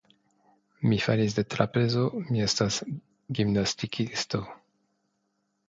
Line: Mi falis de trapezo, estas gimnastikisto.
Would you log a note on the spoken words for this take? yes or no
yes